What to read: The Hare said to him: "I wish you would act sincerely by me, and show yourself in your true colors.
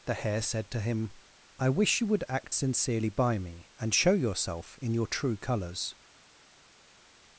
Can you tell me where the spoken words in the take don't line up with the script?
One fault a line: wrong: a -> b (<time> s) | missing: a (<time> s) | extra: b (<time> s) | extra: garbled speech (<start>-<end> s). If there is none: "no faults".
no faults